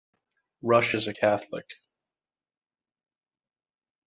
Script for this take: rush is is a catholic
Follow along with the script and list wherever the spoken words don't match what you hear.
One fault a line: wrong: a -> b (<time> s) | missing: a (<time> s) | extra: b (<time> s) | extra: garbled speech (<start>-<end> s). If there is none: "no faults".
missing: is (1.1 s)